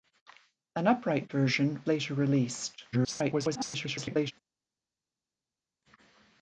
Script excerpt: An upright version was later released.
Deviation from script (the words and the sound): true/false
true